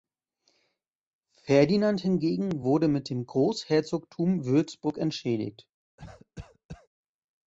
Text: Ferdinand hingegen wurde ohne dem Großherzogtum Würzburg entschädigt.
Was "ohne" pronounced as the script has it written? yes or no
no